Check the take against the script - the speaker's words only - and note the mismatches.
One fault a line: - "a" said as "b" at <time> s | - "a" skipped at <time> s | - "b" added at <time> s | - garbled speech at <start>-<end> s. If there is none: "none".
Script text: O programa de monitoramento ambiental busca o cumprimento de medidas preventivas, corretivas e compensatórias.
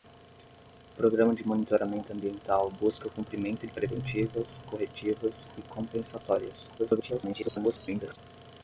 - "de medidas" skipped at 3.7 s
- garbled speech at 6.8-8.2 s